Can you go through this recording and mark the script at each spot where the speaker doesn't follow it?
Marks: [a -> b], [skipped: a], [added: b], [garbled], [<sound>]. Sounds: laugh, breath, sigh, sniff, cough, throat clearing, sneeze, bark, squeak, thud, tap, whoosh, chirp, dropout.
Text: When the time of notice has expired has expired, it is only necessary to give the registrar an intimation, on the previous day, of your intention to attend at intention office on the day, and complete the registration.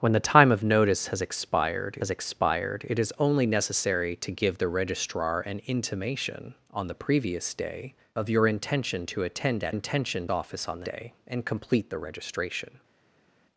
When the time of notice has expired has expired, it is only necessary to give the registrar an intimation, on the previous day, of your intention to attend at intention office on the day, and complete the registration.